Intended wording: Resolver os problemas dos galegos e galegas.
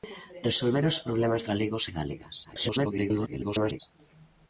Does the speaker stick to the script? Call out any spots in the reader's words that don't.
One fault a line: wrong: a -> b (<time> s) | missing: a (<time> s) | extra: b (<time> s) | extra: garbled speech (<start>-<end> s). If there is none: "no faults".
missing: dos (1.4 s)
extra: garbled speech (2.4-3.8 s)